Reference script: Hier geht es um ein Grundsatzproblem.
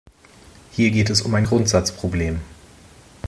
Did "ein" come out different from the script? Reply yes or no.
no